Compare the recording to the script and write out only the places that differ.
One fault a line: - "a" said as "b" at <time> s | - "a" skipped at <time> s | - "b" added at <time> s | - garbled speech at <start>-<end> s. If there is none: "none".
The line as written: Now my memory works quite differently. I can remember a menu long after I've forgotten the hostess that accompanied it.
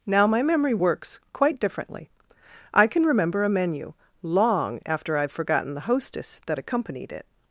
none